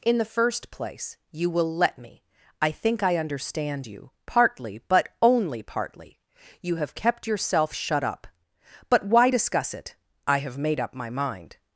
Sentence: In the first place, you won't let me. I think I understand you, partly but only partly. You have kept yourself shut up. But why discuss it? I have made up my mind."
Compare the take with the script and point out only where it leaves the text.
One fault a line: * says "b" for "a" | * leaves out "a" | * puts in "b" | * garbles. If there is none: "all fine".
* says "will" for "won't"